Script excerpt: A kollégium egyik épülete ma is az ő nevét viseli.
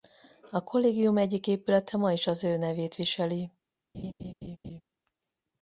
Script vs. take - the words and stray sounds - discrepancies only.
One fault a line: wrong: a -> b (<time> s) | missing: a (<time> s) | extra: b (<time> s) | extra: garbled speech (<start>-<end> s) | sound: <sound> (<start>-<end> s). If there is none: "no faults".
sound: laugh (3.9-4.8 s)